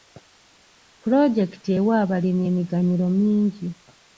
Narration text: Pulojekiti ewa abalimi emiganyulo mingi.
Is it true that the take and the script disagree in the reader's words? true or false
false